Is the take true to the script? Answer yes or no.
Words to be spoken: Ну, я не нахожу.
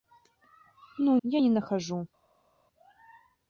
yes